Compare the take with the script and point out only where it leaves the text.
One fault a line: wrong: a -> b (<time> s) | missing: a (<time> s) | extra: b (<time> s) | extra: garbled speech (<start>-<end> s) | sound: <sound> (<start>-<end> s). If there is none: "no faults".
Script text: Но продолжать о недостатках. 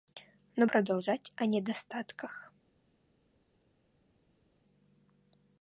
no faults